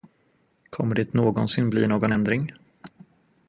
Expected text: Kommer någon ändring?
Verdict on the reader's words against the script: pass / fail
fail